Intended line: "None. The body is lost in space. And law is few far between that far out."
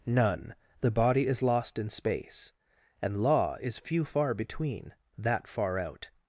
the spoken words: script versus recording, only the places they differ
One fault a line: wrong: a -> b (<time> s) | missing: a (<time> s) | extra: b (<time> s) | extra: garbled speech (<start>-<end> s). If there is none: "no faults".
no faults